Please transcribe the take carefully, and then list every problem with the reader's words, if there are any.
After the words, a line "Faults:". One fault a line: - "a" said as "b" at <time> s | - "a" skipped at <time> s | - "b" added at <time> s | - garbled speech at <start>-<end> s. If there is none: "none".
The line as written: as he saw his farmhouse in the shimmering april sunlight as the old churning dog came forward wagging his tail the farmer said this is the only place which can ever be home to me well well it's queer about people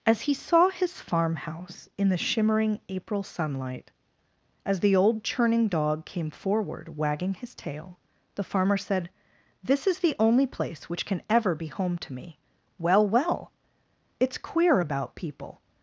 as he saw his farmhouse in the shimmering april sunlight as the old churning dog came forward wagging his tail the farmer said this is the only place which can ever be home to me well well it's queer about people
Faults:
none